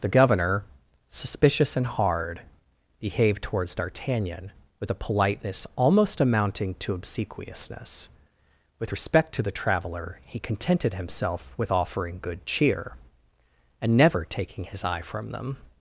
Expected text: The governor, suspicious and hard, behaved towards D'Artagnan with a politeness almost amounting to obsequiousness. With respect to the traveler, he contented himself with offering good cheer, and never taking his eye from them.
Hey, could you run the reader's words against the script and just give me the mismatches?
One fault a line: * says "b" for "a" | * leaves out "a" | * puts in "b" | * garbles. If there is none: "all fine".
all fine